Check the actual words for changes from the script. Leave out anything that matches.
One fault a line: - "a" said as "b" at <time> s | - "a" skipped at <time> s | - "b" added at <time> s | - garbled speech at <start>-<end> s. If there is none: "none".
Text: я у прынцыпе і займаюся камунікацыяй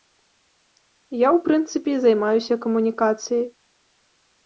none